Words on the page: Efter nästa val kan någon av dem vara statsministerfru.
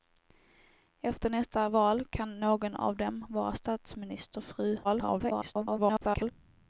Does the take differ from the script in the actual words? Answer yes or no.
yes